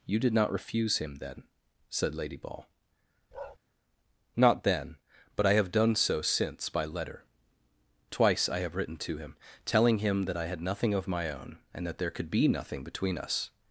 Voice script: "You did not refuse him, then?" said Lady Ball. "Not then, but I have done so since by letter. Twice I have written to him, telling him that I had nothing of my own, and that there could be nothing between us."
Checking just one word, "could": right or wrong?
right